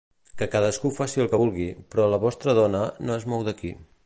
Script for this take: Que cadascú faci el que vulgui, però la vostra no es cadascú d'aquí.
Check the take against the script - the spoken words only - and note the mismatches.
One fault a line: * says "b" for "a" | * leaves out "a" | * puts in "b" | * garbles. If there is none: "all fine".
* puts in "dona"
* says "mou" for "cadascú"